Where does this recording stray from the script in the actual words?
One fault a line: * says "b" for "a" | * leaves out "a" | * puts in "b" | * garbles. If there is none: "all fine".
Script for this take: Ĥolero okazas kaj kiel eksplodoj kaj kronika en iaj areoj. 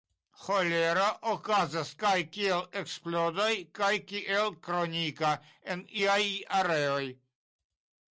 * puts in "kiel"